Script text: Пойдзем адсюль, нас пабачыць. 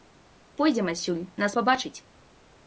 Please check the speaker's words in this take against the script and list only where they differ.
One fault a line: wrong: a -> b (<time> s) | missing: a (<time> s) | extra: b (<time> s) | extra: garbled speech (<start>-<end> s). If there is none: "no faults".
no faults